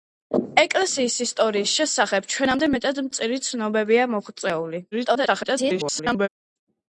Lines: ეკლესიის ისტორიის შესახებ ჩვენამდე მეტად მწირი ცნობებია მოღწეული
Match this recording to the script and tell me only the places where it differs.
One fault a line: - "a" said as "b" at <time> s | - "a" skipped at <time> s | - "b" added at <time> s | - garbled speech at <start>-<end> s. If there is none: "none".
- garbled speech at 4.9-6.3 s